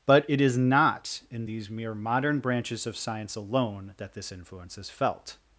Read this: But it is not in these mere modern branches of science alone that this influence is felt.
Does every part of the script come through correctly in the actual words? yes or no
yes